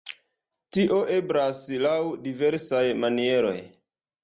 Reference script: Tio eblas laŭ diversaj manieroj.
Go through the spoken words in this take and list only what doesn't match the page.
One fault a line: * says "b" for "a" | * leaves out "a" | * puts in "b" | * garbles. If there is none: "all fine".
all fine